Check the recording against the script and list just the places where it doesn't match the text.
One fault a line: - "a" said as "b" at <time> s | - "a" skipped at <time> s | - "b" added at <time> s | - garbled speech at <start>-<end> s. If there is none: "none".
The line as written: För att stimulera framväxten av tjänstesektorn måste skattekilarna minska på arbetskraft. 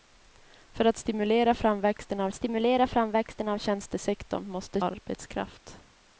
- "tjänstesektorn måste skattekilarna minska på" said as "stimulera framväxten av tjänstesektorn måste" at 2.3 s